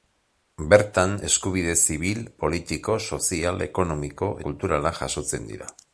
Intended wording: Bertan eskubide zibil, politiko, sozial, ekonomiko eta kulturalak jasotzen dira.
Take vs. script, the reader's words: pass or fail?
fail